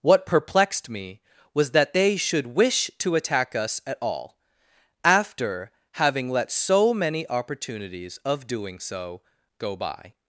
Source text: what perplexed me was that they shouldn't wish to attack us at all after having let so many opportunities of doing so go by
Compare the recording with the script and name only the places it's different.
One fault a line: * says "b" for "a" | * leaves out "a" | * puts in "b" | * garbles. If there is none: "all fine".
* says "should" for "shouldn't"